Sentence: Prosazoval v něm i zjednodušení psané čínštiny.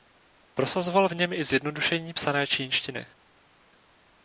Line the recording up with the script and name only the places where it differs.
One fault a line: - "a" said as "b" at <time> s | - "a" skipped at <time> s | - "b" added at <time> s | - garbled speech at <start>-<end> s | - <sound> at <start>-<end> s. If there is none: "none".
none